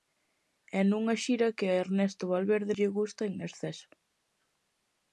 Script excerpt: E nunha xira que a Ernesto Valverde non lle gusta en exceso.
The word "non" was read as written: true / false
false